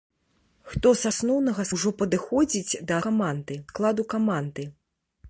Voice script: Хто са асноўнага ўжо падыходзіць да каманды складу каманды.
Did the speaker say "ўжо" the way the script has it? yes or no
yes